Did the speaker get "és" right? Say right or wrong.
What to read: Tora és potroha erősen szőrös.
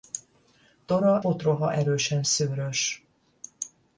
wrong